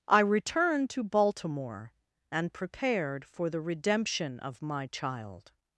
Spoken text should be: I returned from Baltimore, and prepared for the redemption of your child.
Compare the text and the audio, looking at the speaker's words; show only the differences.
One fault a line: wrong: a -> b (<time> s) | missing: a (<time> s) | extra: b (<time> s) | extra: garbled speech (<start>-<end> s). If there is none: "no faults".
wrong: from -> to (0.9 s)
wrong: your -> my (4.6 s)